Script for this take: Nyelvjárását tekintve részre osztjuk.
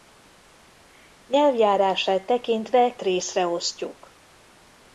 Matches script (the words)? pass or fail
pass